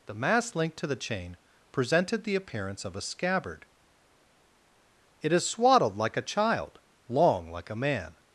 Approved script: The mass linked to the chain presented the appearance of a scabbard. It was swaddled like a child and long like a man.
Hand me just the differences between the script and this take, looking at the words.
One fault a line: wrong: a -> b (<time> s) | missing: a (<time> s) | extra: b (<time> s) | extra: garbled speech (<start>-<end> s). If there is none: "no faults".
wrong: was -> is (5.3 s)
missing: and (6.8 s)